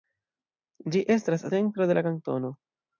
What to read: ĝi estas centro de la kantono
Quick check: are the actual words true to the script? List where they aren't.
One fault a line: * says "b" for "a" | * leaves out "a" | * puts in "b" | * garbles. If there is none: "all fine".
all fine